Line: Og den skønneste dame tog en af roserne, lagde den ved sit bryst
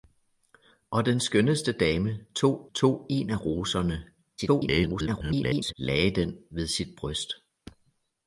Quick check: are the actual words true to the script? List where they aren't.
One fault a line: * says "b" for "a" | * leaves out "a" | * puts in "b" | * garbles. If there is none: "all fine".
* puts in "tog"
* garbles